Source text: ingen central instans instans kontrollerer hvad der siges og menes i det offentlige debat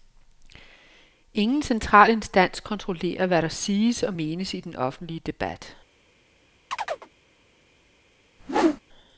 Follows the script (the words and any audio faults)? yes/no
no